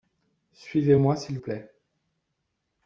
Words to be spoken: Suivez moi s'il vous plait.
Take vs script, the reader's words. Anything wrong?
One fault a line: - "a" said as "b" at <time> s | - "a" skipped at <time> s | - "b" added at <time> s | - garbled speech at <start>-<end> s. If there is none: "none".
- "vous" skipped at 1.4 s